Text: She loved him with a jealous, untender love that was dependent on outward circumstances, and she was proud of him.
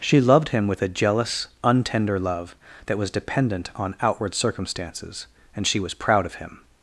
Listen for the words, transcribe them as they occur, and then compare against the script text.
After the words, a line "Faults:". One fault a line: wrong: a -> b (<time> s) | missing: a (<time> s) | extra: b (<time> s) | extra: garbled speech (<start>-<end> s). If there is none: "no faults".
She loved him with a jealous, untender love that was dependent on outward circumstances, and she was proud of him.
Faults:
no faults